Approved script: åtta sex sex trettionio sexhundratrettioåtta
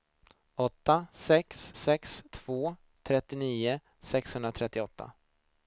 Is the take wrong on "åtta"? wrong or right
right